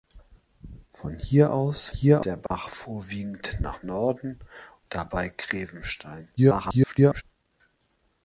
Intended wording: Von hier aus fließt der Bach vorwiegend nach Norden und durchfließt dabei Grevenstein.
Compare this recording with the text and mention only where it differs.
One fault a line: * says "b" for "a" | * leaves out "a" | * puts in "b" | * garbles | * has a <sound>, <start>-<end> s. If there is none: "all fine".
* says "hier" for "fließt"
* has a dropout, 2.5-2.5 s
* leaves out "und durchfließt"
* garbles